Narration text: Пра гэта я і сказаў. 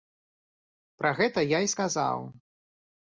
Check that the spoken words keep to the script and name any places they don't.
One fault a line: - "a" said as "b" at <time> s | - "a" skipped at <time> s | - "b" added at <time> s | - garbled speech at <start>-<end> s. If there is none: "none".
none